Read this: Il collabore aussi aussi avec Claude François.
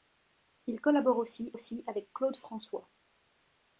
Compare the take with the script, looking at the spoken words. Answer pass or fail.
pass